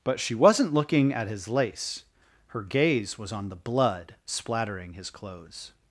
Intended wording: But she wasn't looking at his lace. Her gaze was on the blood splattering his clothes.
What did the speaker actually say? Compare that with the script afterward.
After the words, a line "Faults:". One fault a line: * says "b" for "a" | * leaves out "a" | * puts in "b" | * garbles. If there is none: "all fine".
But she wasn't looking at his lace. Her gaze was on the blood splattering his clothes.
Faults:
all fine